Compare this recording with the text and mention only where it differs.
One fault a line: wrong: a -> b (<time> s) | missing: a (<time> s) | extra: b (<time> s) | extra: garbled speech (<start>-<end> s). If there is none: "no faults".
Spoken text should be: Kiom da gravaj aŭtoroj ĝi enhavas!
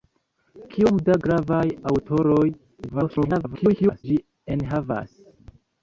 extra: garbled speech (2.9-4.0 s)